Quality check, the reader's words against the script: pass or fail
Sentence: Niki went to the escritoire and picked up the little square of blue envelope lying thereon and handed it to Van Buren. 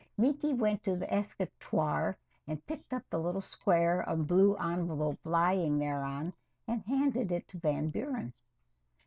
pass